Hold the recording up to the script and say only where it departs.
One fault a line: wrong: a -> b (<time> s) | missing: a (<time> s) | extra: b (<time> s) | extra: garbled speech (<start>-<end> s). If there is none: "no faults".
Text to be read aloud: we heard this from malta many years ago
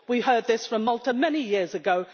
no faults